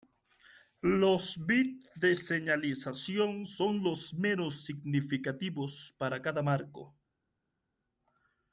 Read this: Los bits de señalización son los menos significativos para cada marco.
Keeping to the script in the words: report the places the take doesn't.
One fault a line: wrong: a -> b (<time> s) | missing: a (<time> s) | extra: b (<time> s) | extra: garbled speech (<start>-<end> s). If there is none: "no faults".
no faults